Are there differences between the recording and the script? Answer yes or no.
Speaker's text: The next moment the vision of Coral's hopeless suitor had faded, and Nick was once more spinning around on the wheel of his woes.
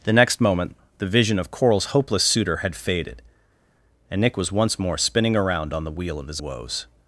no